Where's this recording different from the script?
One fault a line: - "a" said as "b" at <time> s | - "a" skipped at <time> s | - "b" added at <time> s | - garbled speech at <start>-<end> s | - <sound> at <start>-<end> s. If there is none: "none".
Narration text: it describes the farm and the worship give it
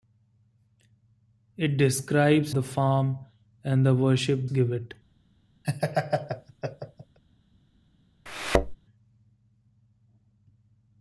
- laugh at 5.6-7.2 s
- thud at 8.3-8.8 s